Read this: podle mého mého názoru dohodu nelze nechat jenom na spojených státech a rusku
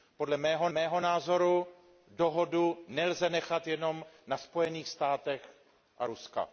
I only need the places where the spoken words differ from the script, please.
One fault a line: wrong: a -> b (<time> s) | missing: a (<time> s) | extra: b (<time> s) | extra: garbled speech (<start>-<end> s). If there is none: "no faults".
no faults